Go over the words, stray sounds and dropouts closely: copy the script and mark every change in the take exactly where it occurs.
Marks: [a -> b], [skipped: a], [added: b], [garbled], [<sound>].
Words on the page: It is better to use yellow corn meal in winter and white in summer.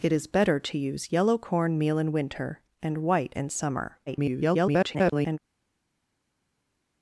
It is better to use yellow corn meal in winter and white in summer. [garbled]